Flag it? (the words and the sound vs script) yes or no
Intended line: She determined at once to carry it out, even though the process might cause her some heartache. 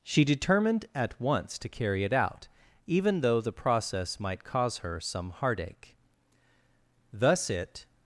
yes